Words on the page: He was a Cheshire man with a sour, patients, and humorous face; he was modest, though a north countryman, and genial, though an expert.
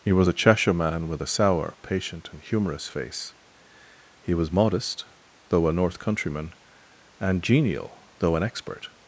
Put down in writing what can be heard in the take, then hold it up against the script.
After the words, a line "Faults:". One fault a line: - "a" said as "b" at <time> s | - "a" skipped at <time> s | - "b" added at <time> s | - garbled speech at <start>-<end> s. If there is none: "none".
He was a Cheshire man with a sour, patient, and humorous face; he was modest, though a north countryman, and genial, though an expert.
Faults:
- "patients" said as "patient" at 1.8 s